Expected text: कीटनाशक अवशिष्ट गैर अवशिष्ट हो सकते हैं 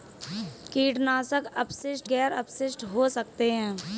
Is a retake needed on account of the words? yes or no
no